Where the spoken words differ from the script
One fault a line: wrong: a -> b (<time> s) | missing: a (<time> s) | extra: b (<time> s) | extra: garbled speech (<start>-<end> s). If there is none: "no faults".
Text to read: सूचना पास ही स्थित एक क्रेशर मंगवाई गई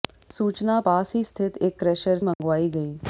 no faults